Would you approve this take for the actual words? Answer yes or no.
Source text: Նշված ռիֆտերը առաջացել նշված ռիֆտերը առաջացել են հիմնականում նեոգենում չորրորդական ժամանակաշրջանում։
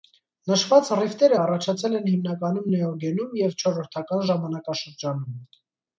no